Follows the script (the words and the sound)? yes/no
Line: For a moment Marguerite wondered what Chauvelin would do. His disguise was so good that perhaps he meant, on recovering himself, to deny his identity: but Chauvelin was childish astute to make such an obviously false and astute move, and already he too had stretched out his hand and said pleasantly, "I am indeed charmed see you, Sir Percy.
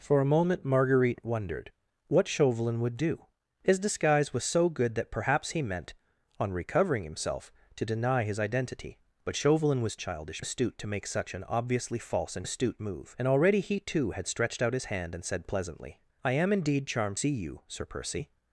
yes